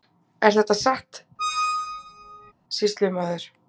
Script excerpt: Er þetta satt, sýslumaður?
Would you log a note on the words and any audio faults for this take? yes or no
yes